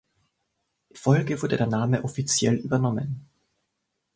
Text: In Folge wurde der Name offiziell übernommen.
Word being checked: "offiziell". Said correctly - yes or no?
yes